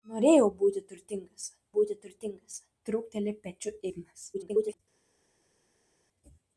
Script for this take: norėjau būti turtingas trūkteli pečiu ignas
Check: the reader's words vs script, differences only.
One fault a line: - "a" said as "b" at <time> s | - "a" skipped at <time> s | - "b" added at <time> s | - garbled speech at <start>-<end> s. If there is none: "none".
- "būti turtingas" added at 1.8 s
- garbled speech at 4.3-4.8 s